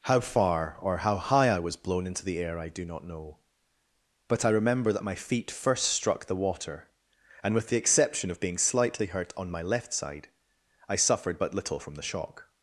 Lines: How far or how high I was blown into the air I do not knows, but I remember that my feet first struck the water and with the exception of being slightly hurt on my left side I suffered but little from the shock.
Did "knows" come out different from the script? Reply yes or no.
yes